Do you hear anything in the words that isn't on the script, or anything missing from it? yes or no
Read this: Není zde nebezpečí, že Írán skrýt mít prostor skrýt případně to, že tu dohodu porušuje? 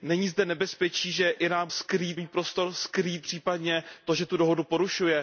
no